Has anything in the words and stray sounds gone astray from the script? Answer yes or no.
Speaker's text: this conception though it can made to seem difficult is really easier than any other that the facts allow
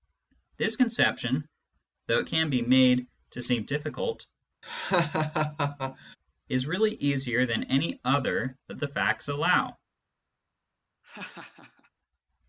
yes